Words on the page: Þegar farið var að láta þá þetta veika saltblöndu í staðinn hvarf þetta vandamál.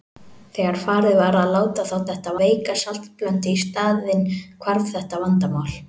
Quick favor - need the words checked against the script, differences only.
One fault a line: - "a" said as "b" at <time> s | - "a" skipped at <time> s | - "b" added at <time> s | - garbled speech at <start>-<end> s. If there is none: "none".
none